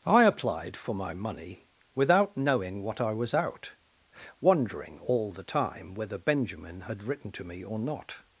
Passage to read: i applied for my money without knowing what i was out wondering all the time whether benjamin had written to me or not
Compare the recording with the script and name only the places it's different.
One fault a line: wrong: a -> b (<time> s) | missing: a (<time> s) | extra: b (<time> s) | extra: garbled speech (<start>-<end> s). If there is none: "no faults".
no faults